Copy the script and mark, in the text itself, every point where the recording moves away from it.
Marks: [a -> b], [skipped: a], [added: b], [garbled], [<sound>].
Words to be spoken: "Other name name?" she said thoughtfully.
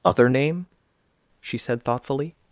"Other name [skipped: name?"] she said thoughtfully.